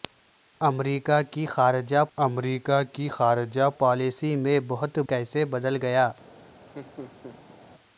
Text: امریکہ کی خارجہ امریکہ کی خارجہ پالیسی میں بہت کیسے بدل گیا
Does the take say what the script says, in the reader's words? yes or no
yes